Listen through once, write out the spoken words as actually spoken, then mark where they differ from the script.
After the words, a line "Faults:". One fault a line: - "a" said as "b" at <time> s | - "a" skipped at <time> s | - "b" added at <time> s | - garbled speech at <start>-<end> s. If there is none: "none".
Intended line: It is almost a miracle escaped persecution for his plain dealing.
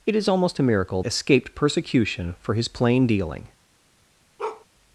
It is almost a miracle escaped persecution for his plain dealing.
Faults:
none